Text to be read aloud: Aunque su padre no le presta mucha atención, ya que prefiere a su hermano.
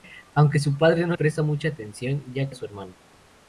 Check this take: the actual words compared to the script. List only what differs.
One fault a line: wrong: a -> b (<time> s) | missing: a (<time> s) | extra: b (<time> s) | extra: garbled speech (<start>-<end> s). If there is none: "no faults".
missing: le (1.1 s)
missing: que prefiere (2.5 s)